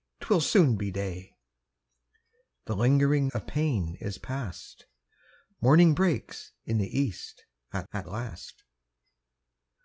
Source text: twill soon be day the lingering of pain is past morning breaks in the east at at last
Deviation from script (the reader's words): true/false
false